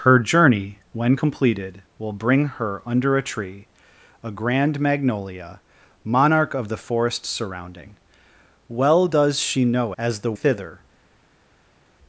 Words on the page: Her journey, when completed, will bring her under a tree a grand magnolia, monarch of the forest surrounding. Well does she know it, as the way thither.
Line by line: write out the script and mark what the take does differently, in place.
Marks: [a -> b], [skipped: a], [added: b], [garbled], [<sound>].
Her journey, when completed, will bring her under a tree a grand magnolia, monarch of the forest surrounding. Well does she know [skipped: it,] as the [skipped: way] thither.